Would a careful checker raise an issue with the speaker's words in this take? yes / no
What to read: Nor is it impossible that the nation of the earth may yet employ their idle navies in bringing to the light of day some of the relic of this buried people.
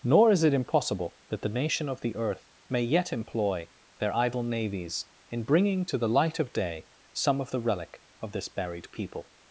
no